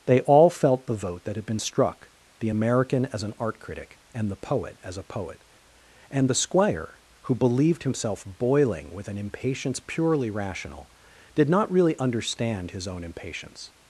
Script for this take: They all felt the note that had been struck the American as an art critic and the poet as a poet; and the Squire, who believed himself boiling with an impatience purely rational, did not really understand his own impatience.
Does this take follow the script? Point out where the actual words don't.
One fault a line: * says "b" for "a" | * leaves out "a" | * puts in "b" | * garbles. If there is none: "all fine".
* says "vote" for "note"